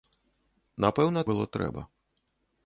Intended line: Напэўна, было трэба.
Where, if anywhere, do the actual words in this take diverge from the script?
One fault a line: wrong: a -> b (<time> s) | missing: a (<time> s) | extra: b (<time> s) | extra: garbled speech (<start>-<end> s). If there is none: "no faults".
no faults